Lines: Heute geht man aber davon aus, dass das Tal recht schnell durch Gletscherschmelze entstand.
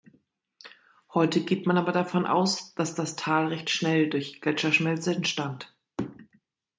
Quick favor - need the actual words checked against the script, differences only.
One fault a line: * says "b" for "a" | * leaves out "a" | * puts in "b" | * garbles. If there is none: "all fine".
all fine